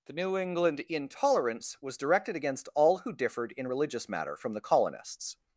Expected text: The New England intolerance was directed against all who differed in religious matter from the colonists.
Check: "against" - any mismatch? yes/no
no